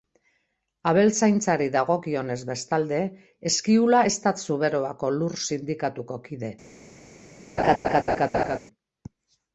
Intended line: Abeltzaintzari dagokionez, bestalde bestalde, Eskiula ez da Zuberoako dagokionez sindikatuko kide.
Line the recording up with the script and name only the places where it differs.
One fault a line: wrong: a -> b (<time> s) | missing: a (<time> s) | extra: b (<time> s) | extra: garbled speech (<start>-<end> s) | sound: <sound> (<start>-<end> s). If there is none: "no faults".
missing: bestalde (3.0 s)
wrong: dagokionez -> lur (5.2 s)
sound: laugh (7.6-8.6 s)